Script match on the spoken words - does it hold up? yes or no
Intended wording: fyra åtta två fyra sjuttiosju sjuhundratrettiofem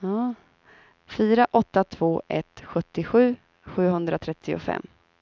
no